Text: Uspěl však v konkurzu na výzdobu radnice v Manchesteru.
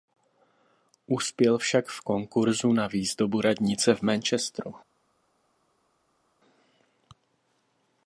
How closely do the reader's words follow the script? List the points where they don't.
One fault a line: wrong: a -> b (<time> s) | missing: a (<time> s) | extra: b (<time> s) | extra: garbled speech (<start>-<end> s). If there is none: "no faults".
no faults